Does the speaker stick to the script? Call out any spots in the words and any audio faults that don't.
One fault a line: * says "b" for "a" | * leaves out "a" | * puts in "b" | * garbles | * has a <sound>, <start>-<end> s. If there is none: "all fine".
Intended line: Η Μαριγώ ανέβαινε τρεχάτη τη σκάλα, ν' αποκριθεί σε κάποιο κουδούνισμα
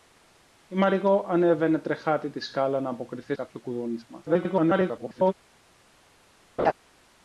* leaves out "σε"
* garbles
* has a laugh, 6.6-6.7 s